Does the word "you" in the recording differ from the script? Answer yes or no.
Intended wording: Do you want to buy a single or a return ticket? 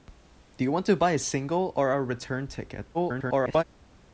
no